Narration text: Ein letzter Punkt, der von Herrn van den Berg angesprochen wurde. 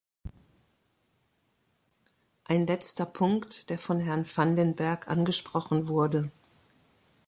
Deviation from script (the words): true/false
false